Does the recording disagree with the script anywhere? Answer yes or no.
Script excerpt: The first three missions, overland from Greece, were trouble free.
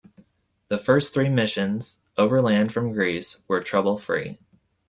no